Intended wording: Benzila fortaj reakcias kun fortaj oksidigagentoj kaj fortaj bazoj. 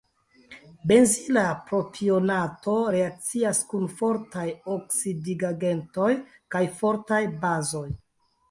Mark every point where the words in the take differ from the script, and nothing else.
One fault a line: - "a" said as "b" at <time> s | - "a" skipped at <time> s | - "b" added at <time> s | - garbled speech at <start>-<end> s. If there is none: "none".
- "fortaj" said as "propionato" at 1.7 s